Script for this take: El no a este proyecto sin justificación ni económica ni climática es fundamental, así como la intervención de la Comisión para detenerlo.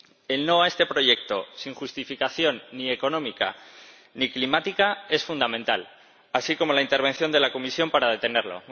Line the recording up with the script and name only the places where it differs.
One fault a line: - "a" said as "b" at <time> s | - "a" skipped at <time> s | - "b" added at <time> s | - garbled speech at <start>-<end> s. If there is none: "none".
none